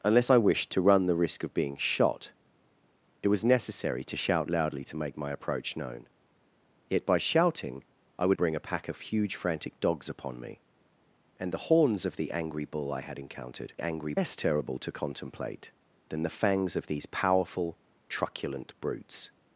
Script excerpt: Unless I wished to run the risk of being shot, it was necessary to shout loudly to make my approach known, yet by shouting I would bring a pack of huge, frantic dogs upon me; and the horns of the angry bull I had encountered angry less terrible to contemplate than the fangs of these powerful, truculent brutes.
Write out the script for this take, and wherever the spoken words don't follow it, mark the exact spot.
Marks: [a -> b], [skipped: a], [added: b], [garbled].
Unless I wished to run the risk of being shot, it was necessary to shout loudly to make my approach known, yet by shouting I would bring a pack of huge, frantic dogs upon me; and the horns of the angry bull I had encountered angry less terrible to contemplate than the fangs of these powerful, truculent brutes.